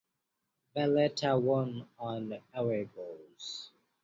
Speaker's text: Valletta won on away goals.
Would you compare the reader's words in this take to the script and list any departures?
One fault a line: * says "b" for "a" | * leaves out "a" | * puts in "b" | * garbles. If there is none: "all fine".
all fine